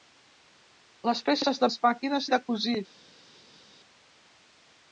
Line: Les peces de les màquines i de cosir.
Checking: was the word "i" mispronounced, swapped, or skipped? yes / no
no